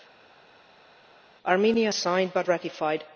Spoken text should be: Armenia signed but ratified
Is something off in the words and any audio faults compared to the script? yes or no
no